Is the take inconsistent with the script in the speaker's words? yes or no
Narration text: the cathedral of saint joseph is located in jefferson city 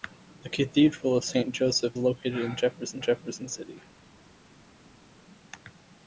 yes